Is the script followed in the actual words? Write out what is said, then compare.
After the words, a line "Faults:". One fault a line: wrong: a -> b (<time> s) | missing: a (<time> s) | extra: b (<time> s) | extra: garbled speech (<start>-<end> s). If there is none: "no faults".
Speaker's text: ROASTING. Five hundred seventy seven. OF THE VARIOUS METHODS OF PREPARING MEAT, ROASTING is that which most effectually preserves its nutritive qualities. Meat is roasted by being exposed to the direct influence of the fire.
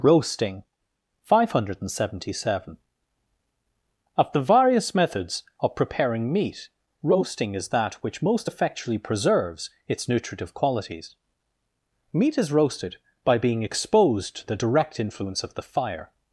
ROASTING. Five hundred seventy seven. OF THE VARIOUS METHODS OF PREPARING MEAT, ROASTING is that which most effectually preserves its nutritive qualities. Meat is roasted by being exposed to the direct influence of the fire.
Faults:
no faults